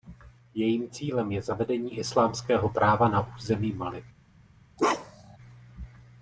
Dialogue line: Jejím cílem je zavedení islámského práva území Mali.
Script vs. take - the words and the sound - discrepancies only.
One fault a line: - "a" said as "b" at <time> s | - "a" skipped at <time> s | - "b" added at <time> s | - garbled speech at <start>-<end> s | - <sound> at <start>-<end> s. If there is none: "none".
- "na" added at 3.1 s
- bark at 4.8-5.4 s